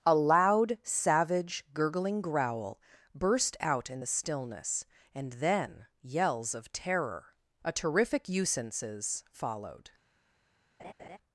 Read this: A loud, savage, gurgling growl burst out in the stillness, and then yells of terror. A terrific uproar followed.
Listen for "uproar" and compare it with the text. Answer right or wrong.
wrong